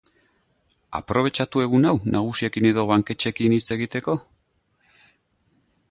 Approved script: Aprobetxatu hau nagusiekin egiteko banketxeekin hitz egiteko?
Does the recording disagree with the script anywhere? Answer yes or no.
yes